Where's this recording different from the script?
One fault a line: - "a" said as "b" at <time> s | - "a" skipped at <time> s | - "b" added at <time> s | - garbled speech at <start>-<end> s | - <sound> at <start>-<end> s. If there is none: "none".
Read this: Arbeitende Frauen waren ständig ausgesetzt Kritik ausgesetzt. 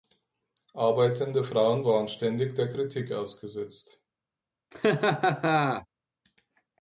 - "ausgesetzt" said as "der" at 2.5 s
- laugh at 4.7-5.9 s